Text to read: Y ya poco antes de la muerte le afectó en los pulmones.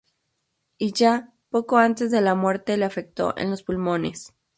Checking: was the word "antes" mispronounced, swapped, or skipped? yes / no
no